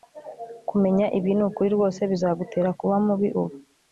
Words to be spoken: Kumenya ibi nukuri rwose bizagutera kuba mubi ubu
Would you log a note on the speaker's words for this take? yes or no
no